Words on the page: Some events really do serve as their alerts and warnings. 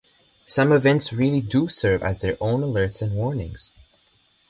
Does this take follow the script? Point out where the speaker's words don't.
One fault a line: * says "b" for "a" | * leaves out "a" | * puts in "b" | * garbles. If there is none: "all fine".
* puts in "own"